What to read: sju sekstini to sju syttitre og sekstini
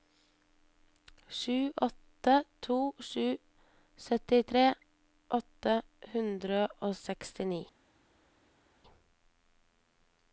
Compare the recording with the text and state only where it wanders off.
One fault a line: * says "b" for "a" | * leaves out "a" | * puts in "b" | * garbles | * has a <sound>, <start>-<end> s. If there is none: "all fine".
* says "åtte" for "sekstini"
* puts in "åtte hundre"